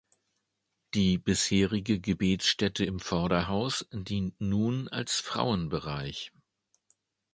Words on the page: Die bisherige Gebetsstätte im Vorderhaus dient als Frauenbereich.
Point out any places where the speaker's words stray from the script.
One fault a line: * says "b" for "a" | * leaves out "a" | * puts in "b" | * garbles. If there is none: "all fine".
* puts in "nun"